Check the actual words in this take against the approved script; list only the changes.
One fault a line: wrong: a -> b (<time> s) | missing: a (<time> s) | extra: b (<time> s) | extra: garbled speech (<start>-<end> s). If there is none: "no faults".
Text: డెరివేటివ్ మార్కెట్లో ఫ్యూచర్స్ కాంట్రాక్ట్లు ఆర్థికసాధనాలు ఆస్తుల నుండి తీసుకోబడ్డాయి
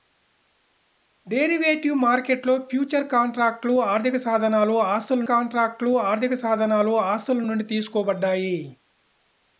extra: కాంట్రాక్ట్లు ఆర్థికసాధనాలు ఆస్తుల (5.3 s)